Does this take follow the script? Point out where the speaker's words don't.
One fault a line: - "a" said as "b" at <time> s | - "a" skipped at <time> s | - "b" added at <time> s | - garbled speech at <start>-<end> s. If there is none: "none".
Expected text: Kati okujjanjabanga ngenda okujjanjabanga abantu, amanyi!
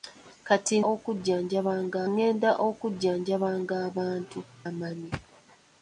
none